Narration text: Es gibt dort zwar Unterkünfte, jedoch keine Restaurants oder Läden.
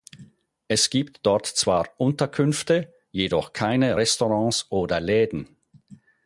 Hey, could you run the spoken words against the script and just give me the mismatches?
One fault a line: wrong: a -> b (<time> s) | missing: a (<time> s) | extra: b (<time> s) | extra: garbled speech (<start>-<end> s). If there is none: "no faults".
no faults